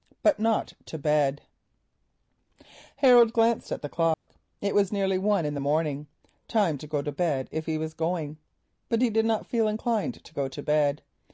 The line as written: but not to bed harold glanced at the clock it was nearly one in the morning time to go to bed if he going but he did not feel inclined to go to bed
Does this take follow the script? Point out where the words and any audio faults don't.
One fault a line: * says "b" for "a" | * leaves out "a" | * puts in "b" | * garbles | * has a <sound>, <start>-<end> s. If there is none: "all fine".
* has a dropout, 4.1-4.3 s
* puts in "was"